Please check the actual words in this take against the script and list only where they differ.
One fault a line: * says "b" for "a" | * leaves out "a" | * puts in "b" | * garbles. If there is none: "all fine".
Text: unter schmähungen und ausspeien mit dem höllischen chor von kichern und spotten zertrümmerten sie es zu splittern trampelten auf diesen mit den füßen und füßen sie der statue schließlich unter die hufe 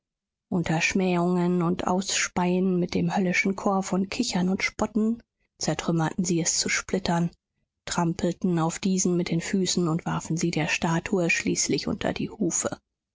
* says "warfen" for "füßen"